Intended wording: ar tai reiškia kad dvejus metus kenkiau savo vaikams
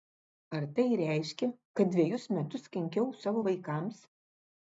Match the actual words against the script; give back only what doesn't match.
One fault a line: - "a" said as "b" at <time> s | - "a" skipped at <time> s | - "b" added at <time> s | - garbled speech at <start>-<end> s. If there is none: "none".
none